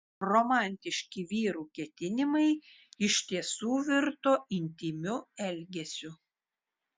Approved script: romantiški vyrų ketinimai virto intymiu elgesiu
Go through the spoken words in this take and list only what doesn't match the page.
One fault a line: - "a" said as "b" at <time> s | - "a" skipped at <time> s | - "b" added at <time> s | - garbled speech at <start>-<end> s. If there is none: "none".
- "iš tiesų" added at 3.1 s